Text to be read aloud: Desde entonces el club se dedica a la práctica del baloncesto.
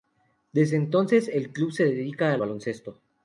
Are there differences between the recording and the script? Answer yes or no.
yes